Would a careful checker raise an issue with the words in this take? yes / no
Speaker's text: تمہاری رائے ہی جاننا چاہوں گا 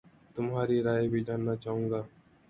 yes